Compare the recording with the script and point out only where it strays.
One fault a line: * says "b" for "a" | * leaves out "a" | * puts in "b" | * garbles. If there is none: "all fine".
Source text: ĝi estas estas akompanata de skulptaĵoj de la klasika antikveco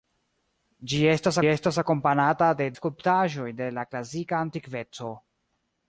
all fine